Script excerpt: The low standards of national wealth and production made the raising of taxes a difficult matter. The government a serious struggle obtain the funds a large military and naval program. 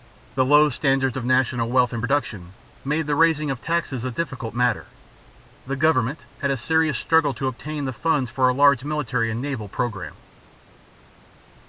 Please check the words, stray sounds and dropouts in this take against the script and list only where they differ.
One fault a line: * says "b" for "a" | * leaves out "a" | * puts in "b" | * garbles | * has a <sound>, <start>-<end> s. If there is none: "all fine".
* puts in "had"
* puts in "to"
* puts in "for"